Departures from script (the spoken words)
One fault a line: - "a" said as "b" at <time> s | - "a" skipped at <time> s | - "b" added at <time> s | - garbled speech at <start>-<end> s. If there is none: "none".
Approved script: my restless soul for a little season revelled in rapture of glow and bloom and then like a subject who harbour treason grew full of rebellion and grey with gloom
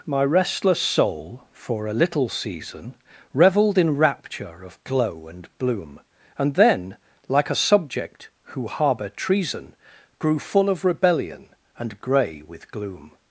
none